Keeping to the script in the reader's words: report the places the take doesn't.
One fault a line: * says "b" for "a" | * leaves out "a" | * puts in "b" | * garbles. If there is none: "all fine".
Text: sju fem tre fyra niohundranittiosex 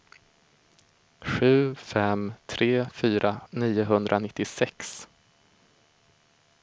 all fine